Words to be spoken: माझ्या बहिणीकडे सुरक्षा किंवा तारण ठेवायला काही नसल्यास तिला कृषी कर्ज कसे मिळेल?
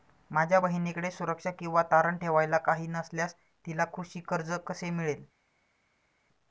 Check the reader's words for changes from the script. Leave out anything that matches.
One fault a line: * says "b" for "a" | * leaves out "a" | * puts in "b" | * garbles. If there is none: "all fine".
all fine